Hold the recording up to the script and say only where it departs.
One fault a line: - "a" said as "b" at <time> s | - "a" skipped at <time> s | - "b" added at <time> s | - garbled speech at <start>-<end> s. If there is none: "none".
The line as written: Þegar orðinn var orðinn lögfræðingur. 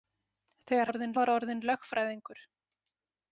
none